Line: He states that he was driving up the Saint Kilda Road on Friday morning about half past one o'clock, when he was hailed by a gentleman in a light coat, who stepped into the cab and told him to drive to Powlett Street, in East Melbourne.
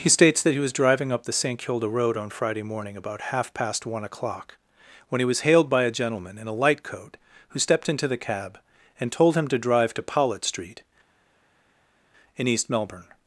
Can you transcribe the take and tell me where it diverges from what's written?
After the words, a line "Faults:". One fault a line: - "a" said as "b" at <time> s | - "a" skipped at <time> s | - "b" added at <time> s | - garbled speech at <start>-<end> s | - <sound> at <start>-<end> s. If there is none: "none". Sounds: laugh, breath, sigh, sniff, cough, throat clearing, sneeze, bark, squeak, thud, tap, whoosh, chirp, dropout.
He states that he was driving up the Saint Kilda Road on Friday morning about half past one o'clock, when he was hailed by a gentleman in a light coat, who stepped into the cab and told him to drive to Powlett Street, in East Melbourne.
Faults:
none